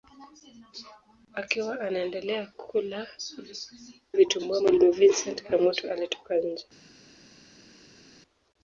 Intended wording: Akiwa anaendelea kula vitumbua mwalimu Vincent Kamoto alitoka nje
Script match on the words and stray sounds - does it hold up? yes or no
yes